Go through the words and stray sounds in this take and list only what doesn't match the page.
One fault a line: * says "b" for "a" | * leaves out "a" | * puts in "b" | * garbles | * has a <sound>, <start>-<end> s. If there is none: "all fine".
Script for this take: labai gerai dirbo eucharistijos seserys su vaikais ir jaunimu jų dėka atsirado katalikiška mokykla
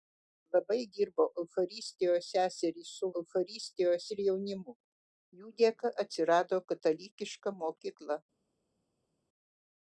* leaves out "gerai"
* says "eucharistijos" for "vaikais"